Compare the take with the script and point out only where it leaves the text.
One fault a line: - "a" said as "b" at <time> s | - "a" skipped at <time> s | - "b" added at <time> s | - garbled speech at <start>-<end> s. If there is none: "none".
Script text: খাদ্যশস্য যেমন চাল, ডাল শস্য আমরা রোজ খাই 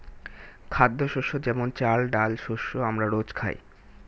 none